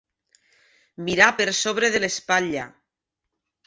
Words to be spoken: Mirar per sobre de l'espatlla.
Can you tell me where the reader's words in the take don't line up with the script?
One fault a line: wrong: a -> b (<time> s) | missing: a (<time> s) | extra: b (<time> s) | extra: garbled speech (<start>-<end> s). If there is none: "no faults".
no faults